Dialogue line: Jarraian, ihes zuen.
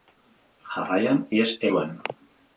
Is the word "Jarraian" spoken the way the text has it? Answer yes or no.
yes